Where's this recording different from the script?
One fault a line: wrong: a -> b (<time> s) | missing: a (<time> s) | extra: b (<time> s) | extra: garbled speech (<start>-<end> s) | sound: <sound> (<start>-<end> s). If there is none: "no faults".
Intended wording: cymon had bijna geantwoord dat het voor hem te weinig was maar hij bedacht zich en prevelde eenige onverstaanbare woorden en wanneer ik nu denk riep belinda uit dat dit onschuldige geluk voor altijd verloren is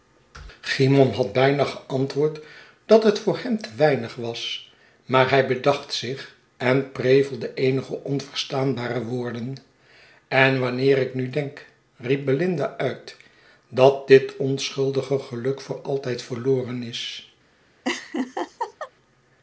sound: laugh (17.8-18.9 s)